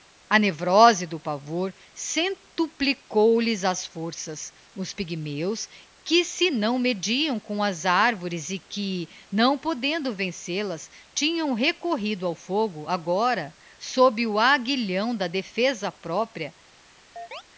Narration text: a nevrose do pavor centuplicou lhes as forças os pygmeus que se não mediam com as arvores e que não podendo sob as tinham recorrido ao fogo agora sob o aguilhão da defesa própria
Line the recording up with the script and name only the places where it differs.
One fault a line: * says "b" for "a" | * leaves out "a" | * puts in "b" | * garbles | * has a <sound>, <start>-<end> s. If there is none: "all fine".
* says "vencel" for "sob"
* has a chirp, 17.2-17.4 s